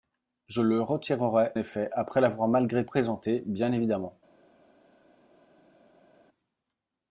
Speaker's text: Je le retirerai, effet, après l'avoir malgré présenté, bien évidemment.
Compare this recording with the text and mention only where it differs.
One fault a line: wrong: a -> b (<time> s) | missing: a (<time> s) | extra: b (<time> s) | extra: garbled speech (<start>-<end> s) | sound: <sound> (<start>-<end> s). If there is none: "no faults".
no faults